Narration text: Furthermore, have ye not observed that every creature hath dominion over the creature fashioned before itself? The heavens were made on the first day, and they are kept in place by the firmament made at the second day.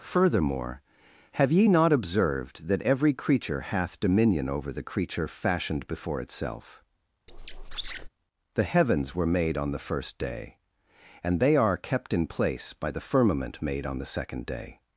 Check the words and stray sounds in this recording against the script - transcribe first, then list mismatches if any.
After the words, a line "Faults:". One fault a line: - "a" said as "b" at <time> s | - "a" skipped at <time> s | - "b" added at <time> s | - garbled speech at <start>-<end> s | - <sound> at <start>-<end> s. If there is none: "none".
Furthermore, have ye not observed that every creature hath dominion over the creature fashioned before itself? The heavens were made on the first day, and they are kept in place by the firmament made on the second day.
Faults:
- squeak at 7.3-8.1 s
- "at" said as "on" at 13.9 s